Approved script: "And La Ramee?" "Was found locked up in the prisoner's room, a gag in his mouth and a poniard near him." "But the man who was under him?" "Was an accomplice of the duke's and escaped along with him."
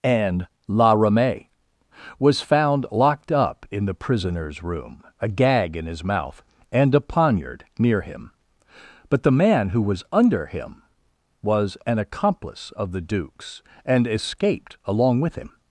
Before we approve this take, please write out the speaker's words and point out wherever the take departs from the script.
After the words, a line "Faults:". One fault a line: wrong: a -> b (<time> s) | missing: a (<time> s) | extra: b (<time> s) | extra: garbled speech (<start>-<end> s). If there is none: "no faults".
"And La Ramee?" "Was found locked up in the prisoner's room, a gag in his mouth and a poniard near him." "But the man who was under him?" "Was an accomplice of the duke's and escaped along with him."
Faults:
no faults